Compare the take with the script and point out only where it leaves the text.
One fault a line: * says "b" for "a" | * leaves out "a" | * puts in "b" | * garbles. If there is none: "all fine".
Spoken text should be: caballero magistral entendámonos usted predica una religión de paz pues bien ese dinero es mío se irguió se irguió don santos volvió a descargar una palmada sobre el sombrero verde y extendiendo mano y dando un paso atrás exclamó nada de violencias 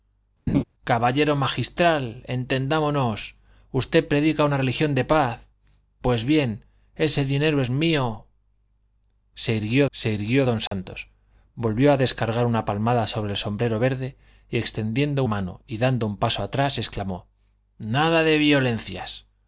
all fine